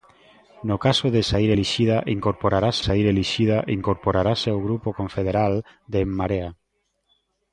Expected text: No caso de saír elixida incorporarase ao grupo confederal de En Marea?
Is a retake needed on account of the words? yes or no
yes